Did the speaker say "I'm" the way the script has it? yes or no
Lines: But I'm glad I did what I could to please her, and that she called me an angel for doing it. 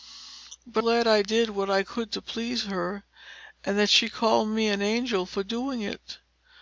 no